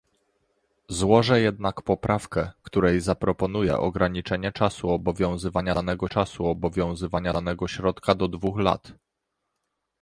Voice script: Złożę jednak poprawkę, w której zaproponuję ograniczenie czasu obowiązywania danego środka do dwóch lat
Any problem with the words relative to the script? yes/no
yes